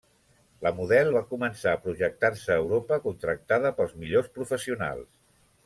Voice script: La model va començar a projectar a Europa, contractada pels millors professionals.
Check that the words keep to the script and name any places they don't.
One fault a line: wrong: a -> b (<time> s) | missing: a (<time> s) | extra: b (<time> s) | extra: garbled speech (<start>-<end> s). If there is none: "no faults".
extra: se (2.4 s)